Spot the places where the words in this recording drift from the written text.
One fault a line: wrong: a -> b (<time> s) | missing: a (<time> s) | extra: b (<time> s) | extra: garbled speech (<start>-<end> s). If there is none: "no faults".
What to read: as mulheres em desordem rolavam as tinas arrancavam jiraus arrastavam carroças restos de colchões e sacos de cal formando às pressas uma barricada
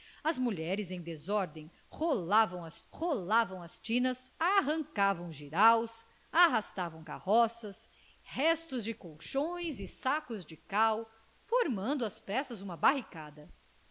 extra: rolavam as (2.9 s)